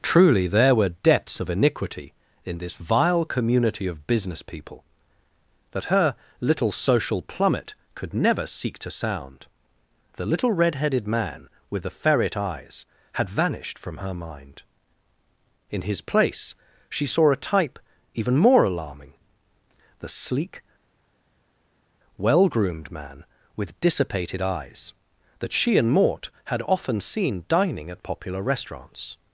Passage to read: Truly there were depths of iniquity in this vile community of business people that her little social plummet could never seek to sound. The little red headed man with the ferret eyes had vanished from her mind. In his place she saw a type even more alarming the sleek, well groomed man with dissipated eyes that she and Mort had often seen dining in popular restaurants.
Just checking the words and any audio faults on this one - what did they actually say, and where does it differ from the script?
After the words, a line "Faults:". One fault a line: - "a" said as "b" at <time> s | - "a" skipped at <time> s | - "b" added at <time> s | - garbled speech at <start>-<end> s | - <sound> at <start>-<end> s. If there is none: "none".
Truly there were depths of iniquity in this vile community of business people that her little social plummet could never seek to sound. The little red headed man with the ferret eyes had vanished from her mind. In his place she saw a type even more alarming the sleek, well groomed man with dissipated eyes that she and Mort had often seen dining at popular restaurants.
Faults:
- "in" said as "at" at 27.9 s